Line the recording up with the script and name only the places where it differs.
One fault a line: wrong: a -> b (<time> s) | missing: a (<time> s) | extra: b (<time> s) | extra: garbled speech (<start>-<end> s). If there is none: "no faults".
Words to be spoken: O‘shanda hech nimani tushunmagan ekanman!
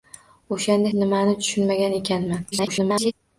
missing: hech (0.9 s)
extra: garbled speech (2.5-3.1 s)